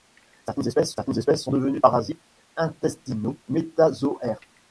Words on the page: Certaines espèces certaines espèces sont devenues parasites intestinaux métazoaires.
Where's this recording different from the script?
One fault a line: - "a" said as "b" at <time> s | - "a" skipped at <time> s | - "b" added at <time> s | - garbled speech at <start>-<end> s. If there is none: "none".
none